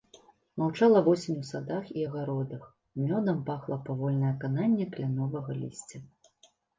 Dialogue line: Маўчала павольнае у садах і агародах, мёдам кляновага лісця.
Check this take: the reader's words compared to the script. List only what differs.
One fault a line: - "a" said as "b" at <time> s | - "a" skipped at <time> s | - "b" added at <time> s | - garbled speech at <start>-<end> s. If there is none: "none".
- "павольнае" said as "восень" at 1.1 s
- "пахла павольнае кананне" added at 3.5 s